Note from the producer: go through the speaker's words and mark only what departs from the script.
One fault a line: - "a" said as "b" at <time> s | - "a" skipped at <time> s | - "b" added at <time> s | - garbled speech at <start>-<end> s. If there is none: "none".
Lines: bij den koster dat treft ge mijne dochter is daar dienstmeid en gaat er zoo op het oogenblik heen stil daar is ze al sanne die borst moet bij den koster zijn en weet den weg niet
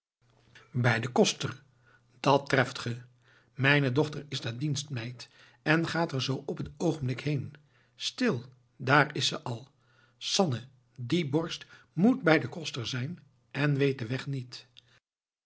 none